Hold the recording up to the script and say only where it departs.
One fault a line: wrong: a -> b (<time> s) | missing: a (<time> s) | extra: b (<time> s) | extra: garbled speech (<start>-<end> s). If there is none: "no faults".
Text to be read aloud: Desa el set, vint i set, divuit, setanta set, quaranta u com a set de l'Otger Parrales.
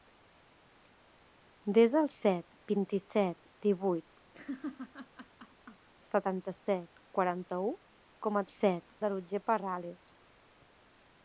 no faults